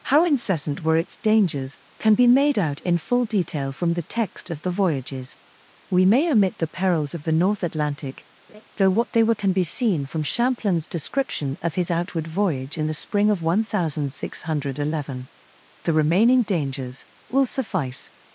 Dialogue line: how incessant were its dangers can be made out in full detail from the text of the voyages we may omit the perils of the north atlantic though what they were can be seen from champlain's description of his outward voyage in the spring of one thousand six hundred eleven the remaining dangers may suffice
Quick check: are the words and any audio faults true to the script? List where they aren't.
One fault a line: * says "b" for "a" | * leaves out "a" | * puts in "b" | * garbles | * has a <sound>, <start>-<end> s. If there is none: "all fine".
* has a laugh, 8.5-8.6 s
* says "will" for "may"